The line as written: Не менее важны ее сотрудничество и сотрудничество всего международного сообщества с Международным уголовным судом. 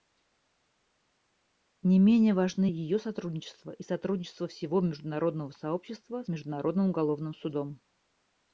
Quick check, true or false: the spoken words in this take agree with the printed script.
true